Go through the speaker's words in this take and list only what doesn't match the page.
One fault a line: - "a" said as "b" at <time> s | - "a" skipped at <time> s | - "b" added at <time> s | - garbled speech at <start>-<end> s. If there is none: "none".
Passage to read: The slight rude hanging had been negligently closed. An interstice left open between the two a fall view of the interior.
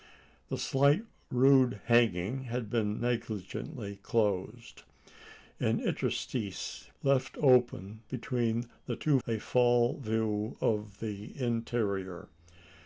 none